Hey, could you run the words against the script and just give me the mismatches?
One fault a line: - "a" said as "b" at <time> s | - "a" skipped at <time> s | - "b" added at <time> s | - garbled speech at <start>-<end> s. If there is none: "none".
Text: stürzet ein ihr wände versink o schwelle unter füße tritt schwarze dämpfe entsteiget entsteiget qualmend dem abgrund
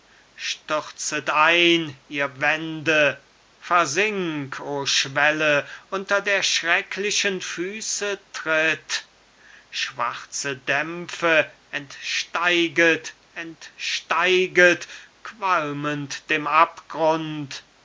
- "der schrecklichen" added at 6.2 s